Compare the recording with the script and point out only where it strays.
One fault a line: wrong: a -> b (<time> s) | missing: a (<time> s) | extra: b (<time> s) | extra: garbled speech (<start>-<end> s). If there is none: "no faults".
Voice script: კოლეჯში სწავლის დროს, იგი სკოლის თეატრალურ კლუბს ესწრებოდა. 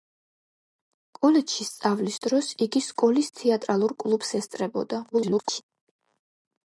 extra: garbled speech (5.1-5.6 s)